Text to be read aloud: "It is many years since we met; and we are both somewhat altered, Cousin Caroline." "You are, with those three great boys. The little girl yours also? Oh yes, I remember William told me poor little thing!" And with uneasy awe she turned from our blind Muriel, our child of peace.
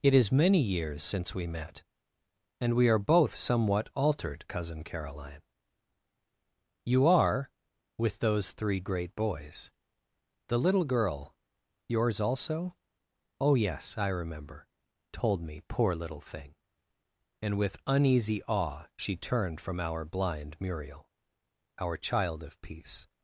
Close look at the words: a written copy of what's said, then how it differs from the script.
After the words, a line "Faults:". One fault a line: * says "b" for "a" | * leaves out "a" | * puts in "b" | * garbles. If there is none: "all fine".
"It is many years since we met; and we are both somewhat altered, Cousin Caroline." "You are, with those three great boys. The little girl yours also? Oh yes, I remember told me poor little thing!" And with uneasy awe she turned from our blind Muriel, our child of peace.
Faults:
* leaves out "William"